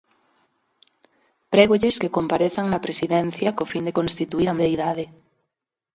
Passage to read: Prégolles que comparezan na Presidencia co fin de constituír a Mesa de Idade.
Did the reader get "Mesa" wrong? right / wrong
wrong